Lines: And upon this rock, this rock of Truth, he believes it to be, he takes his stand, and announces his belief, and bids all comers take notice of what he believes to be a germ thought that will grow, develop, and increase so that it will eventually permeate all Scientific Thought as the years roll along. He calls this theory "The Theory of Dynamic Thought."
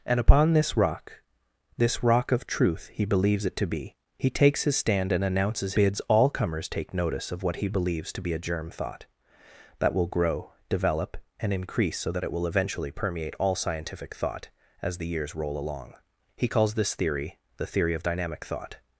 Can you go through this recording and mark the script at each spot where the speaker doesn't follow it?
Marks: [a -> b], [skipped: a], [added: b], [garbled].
And upon this rock, this rock of Truth, he believes it to be, he takes his stand, and announces [skipped: his belief, and] bids all comers take notice of what he believes to be a germ thought that will grow, develop, and increase so that it will eventually permeate all Scientific Thought as the years roll along. He calls this theory "The Theory of Dynamic Thought."